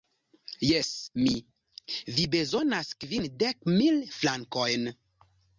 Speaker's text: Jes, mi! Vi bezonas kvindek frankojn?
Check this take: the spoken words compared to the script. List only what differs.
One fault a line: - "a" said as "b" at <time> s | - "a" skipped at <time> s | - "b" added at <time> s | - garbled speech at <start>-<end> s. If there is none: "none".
- "mil" added at 3.8 s